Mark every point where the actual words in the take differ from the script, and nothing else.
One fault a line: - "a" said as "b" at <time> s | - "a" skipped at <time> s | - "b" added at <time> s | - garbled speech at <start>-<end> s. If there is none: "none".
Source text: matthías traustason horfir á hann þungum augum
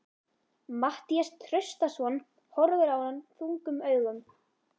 none